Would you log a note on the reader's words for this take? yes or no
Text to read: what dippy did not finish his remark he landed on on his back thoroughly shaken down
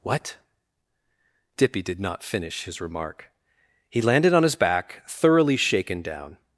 yes